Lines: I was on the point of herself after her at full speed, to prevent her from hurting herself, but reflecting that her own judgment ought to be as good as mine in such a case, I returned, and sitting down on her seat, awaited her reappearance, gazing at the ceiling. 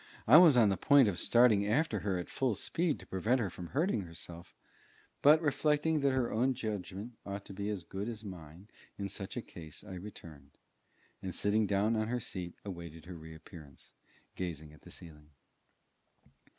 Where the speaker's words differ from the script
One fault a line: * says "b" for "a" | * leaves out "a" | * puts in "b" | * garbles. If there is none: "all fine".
* says "starting" for "herself"